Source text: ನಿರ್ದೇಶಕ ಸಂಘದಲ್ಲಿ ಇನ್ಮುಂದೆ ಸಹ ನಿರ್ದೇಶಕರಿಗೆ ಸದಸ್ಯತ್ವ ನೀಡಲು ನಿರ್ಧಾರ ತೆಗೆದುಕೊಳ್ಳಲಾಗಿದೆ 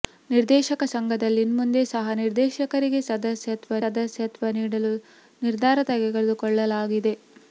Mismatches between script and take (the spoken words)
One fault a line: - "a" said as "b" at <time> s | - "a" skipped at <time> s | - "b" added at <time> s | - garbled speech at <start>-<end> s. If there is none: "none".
- "ಸದಸ್ಯತ್ವ" added at 3.8 s